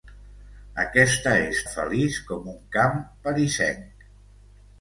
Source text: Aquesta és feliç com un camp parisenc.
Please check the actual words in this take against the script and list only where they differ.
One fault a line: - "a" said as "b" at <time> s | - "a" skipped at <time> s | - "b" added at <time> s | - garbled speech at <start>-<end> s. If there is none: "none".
none